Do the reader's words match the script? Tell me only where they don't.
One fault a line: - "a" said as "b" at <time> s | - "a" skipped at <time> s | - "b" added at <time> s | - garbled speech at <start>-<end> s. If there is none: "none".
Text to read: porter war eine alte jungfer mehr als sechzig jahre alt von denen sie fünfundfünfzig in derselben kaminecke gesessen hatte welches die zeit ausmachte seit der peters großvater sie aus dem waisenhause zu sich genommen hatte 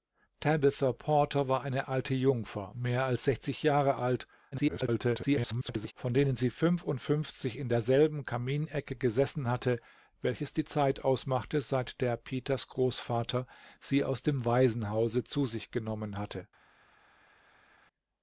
- garbled speech at 4.5-5.9 s